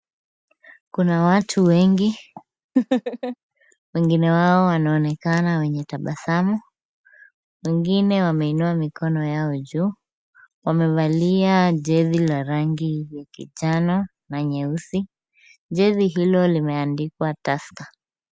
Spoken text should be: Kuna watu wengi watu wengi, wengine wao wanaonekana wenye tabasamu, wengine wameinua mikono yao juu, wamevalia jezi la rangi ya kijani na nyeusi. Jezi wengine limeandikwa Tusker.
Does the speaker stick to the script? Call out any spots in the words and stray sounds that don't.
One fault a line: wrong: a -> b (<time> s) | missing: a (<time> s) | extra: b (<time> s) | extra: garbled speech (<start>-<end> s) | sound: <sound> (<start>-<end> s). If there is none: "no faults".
missing: watu wengi (2.2 s)
sound: laugh (2.8-3.4 s)
wrong: wengine -> hilo (16.1 s)